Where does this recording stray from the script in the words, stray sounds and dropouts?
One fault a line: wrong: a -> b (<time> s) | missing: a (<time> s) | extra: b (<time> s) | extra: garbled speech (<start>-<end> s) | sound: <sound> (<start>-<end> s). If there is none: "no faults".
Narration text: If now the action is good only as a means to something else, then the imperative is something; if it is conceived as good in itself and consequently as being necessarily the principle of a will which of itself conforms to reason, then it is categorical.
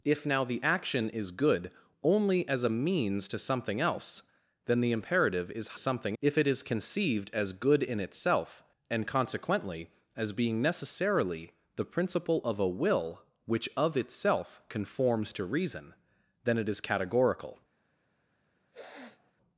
sound: sniff (18.7-19.3 s)